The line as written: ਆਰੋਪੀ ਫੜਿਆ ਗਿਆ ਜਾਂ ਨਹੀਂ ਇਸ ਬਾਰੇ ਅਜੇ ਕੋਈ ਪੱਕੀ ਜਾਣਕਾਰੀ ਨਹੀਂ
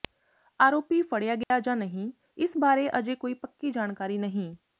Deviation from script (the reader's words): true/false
false